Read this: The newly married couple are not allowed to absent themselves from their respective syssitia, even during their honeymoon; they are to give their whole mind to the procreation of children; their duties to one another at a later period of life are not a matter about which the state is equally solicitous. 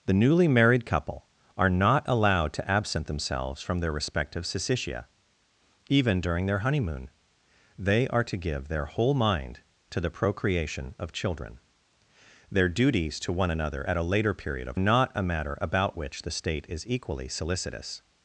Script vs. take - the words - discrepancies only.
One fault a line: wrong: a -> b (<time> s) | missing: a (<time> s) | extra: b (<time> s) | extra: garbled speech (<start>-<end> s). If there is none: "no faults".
missing: life are (14.8 s)